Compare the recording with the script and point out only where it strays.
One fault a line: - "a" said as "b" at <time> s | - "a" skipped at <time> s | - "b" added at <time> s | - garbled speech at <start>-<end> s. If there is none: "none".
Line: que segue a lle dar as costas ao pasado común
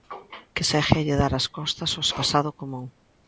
none